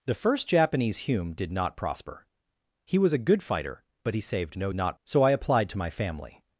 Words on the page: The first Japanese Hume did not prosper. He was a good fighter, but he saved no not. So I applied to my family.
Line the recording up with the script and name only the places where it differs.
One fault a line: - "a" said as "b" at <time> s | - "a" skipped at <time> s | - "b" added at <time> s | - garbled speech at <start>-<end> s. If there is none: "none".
none